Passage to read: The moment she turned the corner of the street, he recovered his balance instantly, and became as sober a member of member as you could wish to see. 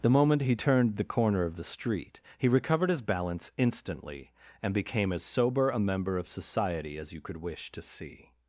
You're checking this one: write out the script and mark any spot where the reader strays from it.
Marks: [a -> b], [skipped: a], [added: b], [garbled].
The moment [she -> he] turned the corner of the street, he recovered his balance instantly, and became as sober a member of [member -> society] as you could wish to see.